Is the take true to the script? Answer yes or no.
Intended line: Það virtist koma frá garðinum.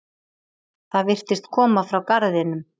yes